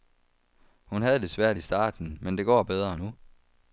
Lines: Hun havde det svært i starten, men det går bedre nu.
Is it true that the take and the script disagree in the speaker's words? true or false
false